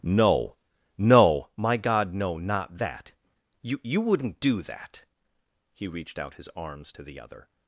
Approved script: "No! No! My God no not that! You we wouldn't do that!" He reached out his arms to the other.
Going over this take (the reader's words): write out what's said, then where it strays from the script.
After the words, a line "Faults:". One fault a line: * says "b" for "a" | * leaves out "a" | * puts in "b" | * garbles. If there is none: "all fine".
"No! No! My God no not that! You you wouldn't do that!" He reached out his arms to the other.
Faults:
* says "you" for "we"